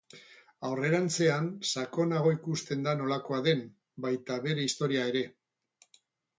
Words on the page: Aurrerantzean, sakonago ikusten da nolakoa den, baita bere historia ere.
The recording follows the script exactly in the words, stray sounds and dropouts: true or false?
true